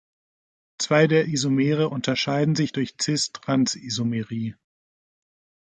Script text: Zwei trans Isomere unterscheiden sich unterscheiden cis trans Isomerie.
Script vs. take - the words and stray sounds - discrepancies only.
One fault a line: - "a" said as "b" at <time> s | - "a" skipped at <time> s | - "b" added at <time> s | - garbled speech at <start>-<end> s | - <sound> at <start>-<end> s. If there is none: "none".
- "trans" said as "der" at 1.1 s
- "unterscheiden" said as "durch" at 2.7 s